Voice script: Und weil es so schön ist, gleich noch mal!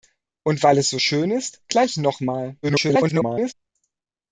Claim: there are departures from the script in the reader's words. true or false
true